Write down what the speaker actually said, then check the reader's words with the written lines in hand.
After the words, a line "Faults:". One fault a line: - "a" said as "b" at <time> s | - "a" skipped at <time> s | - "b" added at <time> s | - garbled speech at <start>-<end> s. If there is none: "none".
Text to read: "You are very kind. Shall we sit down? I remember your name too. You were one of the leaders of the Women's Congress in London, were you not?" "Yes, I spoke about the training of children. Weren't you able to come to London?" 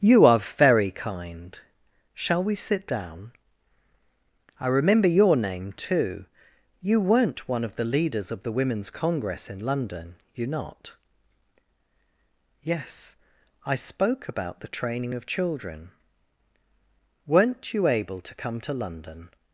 "You are very kind. Shall we sit down? I remember your name too. You weren't one of the leaders of the Women's Congress in London, you not?" "Yes, I spoke about the training of children. Weren't you able to come to London?"
Faults:
- "were" said as "weren't" at 7.0 s
- "were" skipped at 10.2 s